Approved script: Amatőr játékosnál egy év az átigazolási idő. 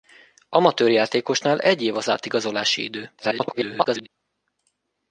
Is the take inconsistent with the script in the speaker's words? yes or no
yes